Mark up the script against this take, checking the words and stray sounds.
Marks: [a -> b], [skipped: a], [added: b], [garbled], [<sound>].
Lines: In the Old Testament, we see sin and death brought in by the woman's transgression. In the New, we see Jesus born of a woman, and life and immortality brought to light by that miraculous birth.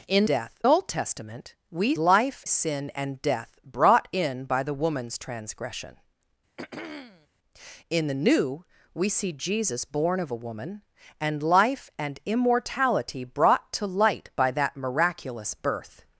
In [the -> death] Old Testament, we [see -> life] sin and death brought in by the woman's transgression. [throat clearing] In the New, we see Jesus born of a woman, and life and immortality brought to light by that miraculous birth.